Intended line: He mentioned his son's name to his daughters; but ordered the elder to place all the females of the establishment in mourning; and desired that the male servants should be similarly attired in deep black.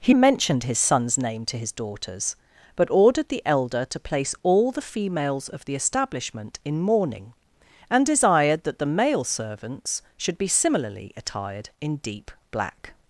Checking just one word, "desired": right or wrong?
right